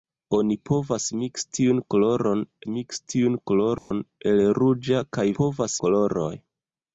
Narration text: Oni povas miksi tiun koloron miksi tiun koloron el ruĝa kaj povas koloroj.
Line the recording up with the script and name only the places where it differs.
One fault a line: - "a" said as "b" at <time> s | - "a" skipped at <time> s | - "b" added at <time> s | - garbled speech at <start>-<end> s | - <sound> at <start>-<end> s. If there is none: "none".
- dropout at 3.8-3.9 s